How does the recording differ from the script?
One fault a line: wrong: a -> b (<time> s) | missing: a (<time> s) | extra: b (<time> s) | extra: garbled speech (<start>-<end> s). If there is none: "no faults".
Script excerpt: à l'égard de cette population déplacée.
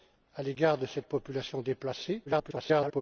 extra: garbled speech (2.3-3.0 s)